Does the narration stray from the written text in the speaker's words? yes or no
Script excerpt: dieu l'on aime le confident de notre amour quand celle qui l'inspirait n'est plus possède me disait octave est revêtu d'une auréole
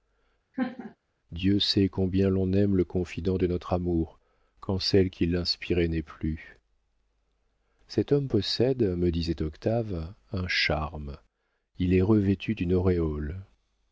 yes